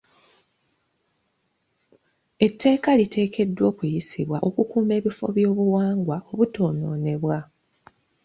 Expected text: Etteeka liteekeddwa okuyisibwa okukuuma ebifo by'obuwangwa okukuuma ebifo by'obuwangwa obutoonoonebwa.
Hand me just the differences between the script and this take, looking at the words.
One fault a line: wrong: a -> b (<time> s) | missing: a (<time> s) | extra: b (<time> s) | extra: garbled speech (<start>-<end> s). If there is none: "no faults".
missing: okukuuma ebifo by'obuwangwa (6.2 s)